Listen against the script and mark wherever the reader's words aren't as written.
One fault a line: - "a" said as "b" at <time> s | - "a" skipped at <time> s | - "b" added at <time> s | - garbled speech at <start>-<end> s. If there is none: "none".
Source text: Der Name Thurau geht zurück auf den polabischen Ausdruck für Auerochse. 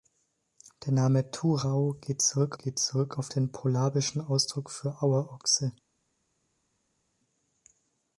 - "geht zurück" added at 2.6 s